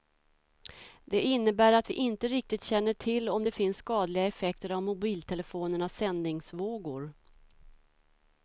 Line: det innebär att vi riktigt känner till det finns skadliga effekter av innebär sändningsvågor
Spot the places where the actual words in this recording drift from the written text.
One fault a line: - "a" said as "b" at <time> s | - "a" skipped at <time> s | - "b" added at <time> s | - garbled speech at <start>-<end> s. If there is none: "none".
- "inte" added at 1.9 s
- "om" added at 3.3 s
- "innebär" said as "mobiltelefonernas" at 4.8 s